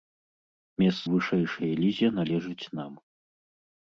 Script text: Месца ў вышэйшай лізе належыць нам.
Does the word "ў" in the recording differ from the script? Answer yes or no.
yes